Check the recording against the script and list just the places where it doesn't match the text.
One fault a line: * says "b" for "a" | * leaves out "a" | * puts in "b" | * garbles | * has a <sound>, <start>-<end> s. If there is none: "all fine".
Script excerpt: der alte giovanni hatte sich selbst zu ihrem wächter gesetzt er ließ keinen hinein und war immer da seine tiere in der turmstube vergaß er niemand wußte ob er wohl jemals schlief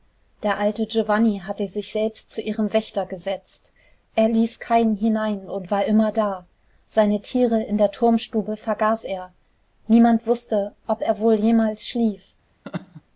* has a laugh, 12.6-13.0 s